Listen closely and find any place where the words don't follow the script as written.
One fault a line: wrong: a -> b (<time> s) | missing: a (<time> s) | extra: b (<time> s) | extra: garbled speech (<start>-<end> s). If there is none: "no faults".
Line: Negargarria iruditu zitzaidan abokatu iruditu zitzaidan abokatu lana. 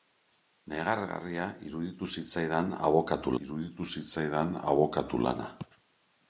no faults